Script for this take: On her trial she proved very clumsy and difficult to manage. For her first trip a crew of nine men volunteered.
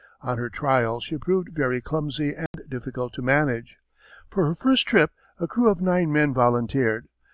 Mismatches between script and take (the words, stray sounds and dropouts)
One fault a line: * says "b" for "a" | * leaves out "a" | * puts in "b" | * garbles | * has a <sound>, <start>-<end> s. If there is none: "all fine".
* has a dropout, 2.5-2.5 s